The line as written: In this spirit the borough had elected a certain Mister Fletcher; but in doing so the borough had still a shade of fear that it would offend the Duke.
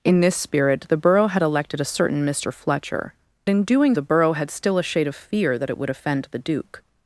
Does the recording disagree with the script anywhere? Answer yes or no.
yes